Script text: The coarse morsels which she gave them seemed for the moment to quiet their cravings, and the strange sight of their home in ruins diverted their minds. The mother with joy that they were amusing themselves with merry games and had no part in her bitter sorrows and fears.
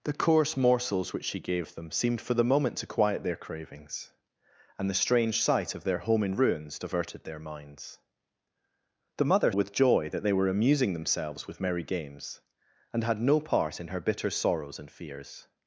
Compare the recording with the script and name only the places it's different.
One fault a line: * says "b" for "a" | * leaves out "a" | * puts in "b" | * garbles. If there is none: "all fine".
all fine